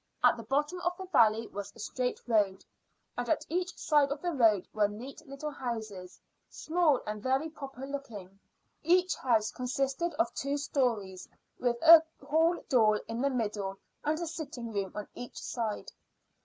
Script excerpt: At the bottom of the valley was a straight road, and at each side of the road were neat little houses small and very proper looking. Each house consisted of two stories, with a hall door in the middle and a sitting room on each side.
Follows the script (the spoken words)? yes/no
yes